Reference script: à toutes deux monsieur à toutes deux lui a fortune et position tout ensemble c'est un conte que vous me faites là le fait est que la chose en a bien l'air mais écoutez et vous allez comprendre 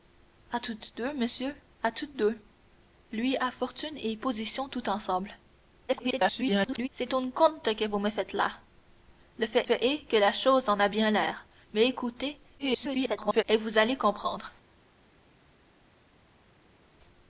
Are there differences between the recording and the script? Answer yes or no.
yes